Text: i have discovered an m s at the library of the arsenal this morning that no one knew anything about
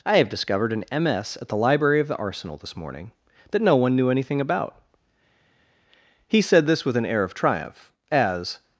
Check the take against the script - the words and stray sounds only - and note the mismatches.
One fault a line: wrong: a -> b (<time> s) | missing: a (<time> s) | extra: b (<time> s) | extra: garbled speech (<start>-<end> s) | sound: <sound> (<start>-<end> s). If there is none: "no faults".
extra: he said this with an air of triumph as (6.3 s)